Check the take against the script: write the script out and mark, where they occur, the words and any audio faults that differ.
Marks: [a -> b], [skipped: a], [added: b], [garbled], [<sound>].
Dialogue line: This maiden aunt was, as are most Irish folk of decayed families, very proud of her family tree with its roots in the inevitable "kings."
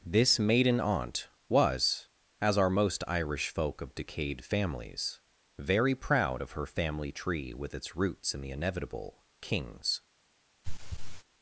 This maiden aunt was, as are most Irish folk of decayed families, very proud of her family tree with its roots in the inevitable "kings." [throat clearing]